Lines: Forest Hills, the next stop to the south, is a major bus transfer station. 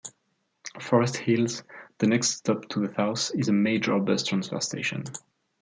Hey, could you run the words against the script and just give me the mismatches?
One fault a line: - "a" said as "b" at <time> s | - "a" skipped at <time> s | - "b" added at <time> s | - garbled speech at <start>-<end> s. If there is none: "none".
none